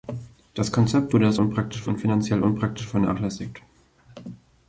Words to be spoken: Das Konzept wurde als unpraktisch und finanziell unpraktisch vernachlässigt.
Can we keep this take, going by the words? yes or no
yes